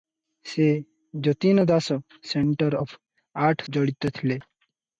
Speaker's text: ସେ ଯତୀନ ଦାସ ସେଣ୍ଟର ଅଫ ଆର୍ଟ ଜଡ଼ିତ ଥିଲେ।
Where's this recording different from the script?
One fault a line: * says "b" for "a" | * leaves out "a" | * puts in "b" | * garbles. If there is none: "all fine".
all fine